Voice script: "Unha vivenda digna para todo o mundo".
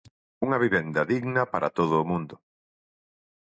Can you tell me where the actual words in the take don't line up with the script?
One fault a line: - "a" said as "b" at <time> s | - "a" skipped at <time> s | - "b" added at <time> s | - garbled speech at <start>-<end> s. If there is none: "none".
none